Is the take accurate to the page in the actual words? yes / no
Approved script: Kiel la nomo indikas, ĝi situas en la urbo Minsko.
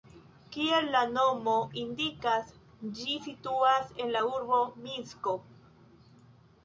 yes